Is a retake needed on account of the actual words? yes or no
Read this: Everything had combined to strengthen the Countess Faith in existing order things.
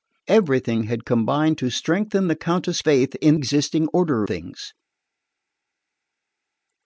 no